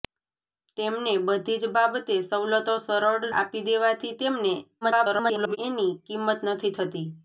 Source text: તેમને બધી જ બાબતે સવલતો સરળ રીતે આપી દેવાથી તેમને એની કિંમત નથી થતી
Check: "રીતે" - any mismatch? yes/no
yes